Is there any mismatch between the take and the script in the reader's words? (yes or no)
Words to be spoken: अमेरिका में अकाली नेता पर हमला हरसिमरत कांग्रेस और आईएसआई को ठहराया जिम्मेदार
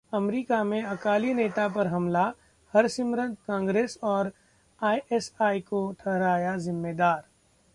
no